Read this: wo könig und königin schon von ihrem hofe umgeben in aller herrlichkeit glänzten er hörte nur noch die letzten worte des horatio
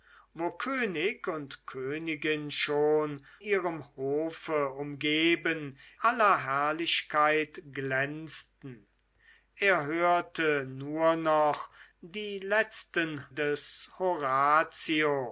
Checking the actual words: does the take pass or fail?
fail